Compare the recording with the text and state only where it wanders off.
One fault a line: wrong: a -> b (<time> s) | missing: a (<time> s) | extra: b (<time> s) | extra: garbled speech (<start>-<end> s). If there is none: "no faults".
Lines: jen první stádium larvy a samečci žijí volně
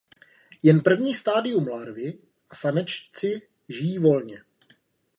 no faults